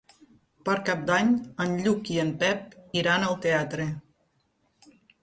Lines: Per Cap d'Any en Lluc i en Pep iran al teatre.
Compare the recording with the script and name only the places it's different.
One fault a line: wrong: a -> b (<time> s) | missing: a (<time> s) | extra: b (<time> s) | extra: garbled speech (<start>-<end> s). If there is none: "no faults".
no faults